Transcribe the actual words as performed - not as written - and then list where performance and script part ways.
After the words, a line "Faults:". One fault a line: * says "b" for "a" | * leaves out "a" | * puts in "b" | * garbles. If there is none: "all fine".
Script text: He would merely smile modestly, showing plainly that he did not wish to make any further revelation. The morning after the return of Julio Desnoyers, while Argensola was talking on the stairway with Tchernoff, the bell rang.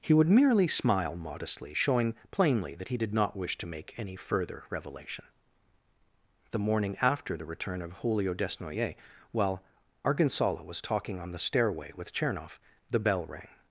He would merely smile modestly, showing plainly that he did not wish to make any further revelation. The morning after the return of Julio Desnoyers, while Argensola was talking on the stairway with Tchernoff, the bell rang.
Faults:
all fine